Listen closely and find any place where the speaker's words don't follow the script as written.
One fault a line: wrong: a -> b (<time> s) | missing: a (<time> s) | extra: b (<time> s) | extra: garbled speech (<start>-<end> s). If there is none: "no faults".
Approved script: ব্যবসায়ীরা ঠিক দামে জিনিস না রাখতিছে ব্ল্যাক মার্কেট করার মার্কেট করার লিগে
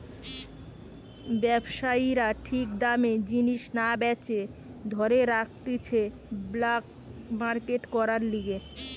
extra: বেচে ধরে (4.0 s)
missing: মার্কেট করার (8.2 s)